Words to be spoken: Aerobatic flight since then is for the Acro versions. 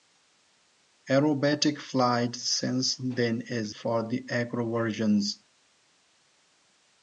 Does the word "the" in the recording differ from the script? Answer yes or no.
no